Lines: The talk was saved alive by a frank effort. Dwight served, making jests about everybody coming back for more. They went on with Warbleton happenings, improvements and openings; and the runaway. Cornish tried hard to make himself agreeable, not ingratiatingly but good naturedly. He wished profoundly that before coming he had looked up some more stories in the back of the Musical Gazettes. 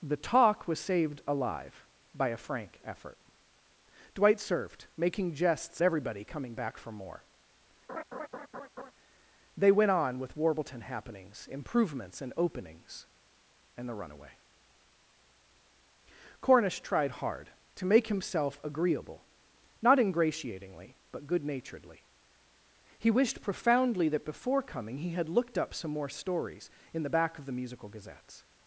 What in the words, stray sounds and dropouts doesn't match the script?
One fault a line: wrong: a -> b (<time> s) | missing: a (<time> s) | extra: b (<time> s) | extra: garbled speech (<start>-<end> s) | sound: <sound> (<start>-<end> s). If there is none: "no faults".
missing: about (5.8 s)
sound: laugh (7.9-8.9 s)